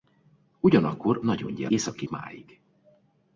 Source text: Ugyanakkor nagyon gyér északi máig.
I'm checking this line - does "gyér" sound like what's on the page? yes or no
yes